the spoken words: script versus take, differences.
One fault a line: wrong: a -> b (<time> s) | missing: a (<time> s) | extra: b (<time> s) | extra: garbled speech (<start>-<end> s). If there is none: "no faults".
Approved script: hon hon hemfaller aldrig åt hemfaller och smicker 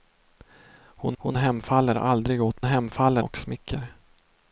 no faults